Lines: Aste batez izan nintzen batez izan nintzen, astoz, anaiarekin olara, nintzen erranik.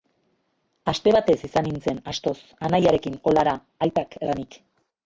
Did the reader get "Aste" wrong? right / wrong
right